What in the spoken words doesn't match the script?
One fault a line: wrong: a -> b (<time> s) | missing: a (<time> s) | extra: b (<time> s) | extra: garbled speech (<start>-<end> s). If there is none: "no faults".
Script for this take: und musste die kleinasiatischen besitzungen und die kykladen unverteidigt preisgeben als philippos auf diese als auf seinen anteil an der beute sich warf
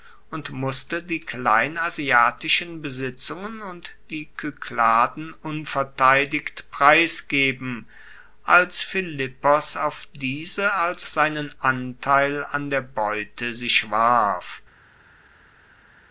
missing: auf (11.1 s)